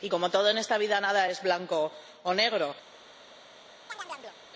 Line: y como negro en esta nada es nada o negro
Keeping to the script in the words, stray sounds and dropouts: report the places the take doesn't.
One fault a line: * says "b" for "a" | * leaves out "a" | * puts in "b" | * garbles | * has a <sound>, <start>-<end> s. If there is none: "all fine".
* says "todo" for "negro"
* puts in "vida"
* says "blanco" for "nada"
* has a chirp, 3.9-4.4 s